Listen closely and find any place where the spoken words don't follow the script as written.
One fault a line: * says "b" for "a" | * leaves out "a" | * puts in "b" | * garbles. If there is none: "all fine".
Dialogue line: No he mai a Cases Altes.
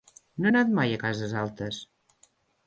* puts in "anat"